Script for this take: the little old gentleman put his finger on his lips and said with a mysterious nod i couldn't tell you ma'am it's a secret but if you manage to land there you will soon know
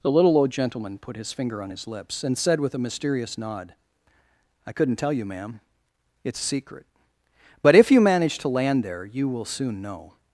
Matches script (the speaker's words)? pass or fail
pass